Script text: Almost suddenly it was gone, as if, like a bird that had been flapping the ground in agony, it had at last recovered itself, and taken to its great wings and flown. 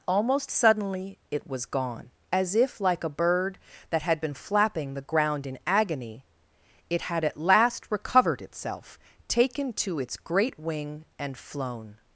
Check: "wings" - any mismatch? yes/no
yes